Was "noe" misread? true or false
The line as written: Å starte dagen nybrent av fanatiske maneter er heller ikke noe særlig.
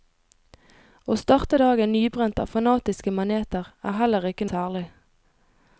true